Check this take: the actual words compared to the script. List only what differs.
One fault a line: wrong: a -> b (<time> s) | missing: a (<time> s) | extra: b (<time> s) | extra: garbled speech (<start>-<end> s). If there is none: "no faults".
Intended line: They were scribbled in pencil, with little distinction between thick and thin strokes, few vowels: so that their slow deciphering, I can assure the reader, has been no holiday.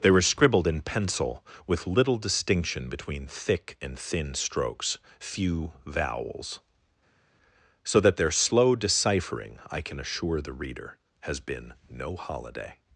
no faults